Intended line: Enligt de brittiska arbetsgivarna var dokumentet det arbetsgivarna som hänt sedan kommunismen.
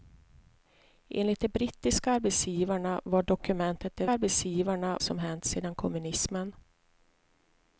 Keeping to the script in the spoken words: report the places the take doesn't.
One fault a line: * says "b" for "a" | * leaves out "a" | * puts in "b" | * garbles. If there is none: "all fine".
all fine